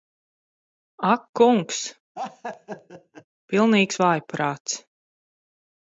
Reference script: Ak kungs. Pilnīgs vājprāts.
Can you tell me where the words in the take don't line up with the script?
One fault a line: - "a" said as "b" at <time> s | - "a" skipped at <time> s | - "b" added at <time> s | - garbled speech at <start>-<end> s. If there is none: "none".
none